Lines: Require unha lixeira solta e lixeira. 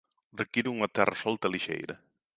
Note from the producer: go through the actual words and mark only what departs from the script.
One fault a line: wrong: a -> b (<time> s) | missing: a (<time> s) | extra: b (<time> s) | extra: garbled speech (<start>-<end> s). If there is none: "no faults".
wrong: lixeira -> terra (0.9 s)